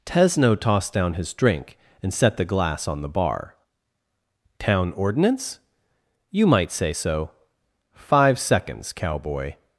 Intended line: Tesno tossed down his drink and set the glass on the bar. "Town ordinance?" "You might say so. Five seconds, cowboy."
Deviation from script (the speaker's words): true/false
false